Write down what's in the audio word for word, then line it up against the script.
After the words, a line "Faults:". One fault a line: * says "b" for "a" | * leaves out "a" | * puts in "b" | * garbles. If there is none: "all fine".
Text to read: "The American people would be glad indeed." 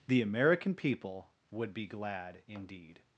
"The American people would be glad indeed."
Faults:
all fine